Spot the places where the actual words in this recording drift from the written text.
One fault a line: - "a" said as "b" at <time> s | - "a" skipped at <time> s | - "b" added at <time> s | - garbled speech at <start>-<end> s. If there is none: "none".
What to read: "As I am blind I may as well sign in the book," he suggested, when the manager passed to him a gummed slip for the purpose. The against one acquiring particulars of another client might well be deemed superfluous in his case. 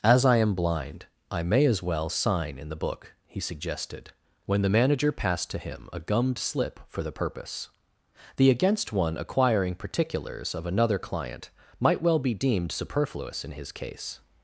none